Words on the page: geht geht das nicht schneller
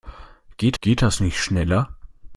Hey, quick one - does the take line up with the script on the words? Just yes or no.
yes